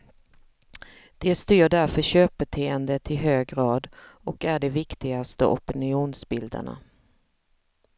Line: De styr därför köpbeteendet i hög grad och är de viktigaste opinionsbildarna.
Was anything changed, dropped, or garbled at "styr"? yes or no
no